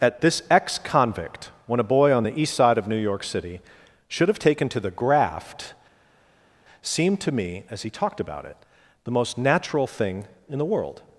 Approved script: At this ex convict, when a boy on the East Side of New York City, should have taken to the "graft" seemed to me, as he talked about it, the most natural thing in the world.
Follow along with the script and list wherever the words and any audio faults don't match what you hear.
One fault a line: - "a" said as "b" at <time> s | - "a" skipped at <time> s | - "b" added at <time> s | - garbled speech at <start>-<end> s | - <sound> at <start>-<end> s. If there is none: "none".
none